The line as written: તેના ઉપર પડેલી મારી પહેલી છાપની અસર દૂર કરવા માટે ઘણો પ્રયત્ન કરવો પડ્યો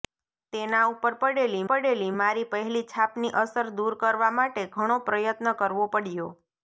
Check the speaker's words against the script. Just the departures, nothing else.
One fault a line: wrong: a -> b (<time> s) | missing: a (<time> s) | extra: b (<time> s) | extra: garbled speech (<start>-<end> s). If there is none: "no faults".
extra: પડેલી (1.7 s)